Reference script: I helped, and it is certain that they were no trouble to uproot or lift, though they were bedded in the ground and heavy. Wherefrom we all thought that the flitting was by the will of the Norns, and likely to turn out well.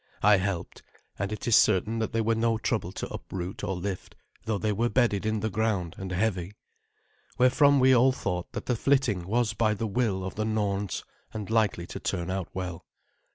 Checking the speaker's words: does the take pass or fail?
pass